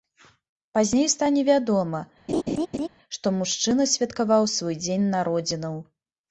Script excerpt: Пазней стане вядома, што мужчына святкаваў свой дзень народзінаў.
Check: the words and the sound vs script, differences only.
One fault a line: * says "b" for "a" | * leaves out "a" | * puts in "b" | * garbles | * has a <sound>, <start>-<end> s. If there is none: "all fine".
* has a laugh, 2.3-2.9 s